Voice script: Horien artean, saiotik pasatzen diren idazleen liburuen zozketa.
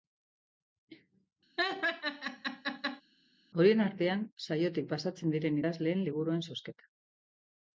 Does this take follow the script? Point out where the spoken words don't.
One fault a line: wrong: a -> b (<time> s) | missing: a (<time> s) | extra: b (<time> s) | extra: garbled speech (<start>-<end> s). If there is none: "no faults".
no faults